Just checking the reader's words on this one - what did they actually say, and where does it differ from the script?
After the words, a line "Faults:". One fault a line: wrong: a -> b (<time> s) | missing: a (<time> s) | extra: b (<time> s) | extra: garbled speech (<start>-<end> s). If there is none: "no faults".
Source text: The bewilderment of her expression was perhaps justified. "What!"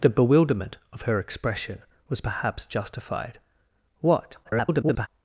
The bewilderment of her expression was perhaps justified. "What!" [garbled]
Faults:
extra: garbled speech (4.4-5.1 s)